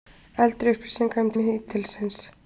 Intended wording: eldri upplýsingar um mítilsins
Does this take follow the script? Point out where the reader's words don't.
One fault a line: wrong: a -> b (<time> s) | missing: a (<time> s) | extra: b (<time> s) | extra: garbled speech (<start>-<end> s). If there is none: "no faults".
no faults